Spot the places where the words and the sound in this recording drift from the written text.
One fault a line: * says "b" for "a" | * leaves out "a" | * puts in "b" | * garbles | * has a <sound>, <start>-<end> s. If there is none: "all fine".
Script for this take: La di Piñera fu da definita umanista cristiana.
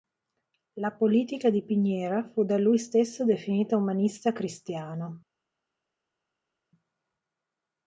* puts in "politica"
* puts in "lui stesso"